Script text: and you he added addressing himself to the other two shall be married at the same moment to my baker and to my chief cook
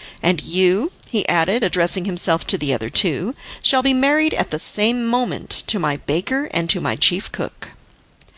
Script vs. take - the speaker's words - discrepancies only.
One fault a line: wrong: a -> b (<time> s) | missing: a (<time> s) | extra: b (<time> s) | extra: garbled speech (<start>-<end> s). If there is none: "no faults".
no faults